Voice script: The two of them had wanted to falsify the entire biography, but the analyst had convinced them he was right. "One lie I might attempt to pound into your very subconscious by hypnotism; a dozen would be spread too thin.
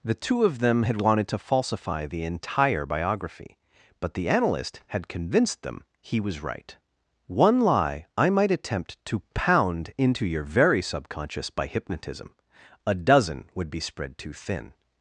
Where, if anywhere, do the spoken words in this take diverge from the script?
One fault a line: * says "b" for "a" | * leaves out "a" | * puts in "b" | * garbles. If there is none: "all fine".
all fine